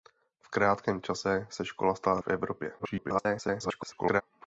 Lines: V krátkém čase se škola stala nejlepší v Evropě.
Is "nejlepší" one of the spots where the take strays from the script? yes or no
yes